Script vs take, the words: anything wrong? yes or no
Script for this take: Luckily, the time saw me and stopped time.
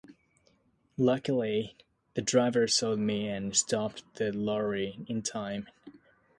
yes